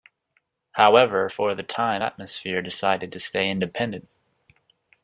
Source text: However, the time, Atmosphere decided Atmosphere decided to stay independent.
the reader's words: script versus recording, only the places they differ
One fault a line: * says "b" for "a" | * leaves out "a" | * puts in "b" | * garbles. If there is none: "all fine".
* puts in "for"
* leaves out "Atmosphere decided"